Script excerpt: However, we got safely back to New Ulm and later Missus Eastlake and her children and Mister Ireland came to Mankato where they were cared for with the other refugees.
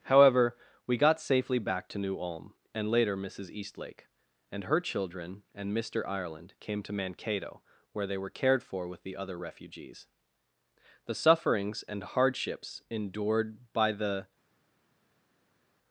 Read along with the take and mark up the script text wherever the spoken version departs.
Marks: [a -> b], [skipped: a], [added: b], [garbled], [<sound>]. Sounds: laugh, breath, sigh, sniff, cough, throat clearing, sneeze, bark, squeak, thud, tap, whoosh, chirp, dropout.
However, we got safely back to New Ulm and later Missus Eastlake and her children and Mister Ireland came to Mankato where they were cared for with the other refugees. [added: The sufferings and hardships endured by the]